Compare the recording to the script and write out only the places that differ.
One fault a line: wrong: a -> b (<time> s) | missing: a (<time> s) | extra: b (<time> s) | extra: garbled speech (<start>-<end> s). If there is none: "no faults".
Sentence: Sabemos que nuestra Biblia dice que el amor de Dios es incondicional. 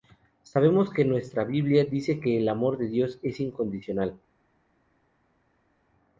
no faults